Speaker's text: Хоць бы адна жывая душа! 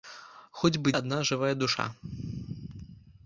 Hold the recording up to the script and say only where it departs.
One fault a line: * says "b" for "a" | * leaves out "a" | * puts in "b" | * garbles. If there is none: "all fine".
all fine